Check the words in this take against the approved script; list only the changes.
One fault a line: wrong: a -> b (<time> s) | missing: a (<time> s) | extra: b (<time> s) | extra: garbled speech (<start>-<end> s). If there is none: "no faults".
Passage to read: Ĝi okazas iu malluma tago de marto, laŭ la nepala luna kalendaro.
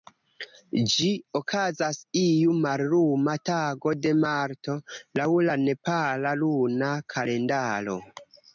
no faults